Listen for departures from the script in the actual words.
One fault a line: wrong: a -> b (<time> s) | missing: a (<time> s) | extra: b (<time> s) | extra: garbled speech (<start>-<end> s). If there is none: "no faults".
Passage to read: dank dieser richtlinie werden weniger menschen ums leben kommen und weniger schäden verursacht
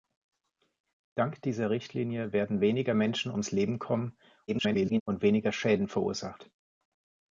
extra: garbled speech (4.5-5.0 s)